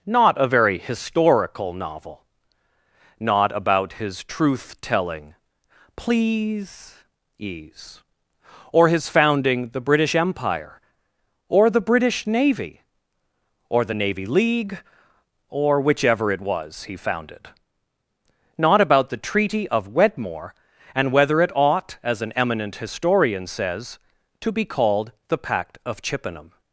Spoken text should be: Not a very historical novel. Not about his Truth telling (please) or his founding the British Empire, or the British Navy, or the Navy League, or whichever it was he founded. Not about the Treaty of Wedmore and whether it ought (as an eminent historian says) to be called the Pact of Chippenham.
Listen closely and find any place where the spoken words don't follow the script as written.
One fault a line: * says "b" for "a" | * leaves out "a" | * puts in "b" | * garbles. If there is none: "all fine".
* puts in "ease"